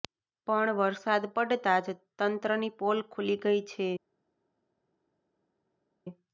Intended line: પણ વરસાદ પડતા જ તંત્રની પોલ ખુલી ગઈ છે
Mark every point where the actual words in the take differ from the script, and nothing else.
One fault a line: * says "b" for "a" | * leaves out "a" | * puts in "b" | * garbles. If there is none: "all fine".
all fine